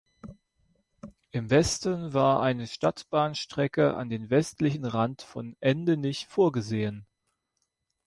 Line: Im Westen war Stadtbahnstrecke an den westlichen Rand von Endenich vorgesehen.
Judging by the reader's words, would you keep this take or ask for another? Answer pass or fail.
fail